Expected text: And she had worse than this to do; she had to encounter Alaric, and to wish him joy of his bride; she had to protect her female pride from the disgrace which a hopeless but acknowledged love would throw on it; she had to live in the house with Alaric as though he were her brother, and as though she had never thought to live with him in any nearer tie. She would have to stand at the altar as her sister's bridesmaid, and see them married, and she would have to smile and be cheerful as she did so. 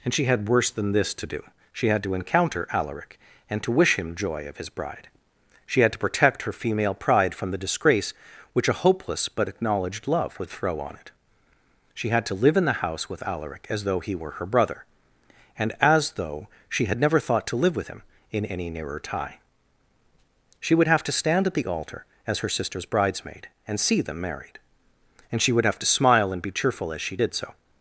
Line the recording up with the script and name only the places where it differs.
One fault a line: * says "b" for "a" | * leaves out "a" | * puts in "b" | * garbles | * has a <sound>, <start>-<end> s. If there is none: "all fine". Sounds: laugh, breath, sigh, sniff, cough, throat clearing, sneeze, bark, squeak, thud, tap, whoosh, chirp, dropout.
all fine